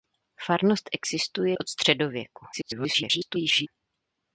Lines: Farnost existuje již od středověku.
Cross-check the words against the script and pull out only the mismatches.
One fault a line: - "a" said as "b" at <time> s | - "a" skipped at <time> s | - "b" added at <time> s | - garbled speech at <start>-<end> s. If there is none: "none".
- "již" skipped at 1.6 s
- garbled speech at 2.5-3.7 s